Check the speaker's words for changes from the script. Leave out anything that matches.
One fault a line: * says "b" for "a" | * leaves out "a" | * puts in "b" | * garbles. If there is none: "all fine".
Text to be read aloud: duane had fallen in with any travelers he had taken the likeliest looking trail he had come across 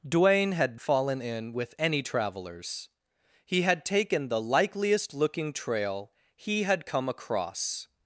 all fine